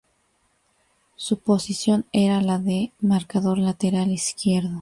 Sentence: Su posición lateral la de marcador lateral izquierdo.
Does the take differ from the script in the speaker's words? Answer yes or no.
yes